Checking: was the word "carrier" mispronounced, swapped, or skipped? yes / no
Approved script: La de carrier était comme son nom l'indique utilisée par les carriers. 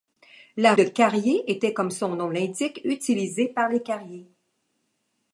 no